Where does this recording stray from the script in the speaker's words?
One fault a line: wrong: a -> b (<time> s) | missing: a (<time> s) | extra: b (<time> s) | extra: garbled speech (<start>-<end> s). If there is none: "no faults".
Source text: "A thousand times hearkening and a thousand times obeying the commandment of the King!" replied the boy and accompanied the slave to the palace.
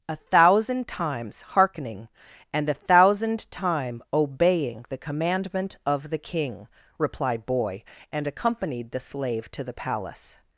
wrong: times -> time (3.5 s)
missing: the (7.4 s)